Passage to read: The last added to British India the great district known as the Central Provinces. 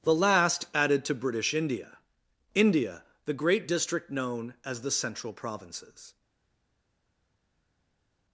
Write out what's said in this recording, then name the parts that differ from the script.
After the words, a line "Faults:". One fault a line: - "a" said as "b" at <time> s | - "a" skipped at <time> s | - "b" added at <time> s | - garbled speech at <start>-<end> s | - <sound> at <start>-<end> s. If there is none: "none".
The last added to British India India the great district known as the Central Provinces.
Faults:
- "India" added at 2.5 s